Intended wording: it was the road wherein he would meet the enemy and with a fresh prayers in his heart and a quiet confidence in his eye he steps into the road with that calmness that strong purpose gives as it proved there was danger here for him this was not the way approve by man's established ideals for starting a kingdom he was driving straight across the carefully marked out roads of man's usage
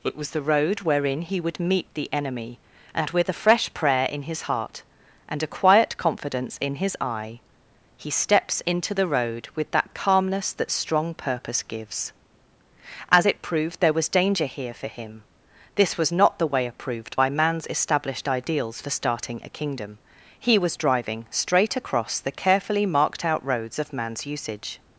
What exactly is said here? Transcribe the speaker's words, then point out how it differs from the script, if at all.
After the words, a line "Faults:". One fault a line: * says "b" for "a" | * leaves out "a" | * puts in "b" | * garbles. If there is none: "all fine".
it was the road wherein he would meet the enemy and with a fresh prayer in his heart and a quiet confidence in his eye he steps into the road with that calmness that strong purpose gives as it proved there was danger here for him this was not the way approved by man's established ideals for starting a kingdom he was driving straight across the carefully marked out roads of man's usage
Faults:
* says "prayer" for "prayers"
* says "approved" for "approve"